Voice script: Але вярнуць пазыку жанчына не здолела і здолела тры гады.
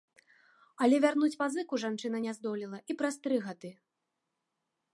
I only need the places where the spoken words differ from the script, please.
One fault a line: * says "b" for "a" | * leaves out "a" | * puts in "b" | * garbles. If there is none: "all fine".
* says "праз" for "здолела"